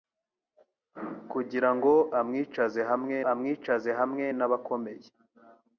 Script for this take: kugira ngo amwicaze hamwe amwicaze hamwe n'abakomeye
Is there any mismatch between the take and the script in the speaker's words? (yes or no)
no